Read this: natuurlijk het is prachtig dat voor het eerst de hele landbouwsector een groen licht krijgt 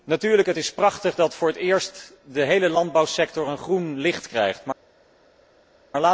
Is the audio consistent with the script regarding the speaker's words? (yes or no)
yes